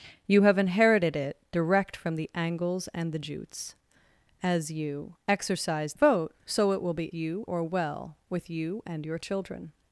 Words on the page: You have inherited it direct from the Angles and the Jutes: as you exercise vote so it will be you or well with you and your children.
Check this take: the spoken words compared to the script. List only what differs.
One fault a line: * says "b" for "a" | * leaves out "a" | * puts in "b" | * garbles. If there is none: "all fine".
all fine